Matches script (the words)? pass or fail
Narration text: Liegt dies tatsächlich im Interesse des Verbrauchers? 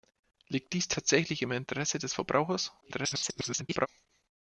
fail